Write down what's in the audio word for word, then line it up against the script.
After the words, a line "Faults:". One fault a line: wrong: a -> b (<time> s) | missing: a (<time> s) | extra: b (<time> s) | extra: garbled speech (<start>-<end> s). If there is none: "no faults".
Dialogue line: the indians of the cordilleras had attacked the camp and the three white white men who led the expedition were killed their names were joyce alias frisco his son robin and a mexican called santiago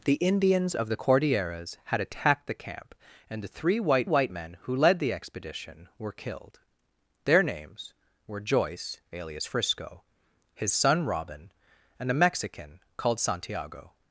the indians of the cordilleras had attacked the camp and the three white white men who led the expedition were killed their names were joyce alias frisco his son robin and a mexican called santiago
Faults:
no faults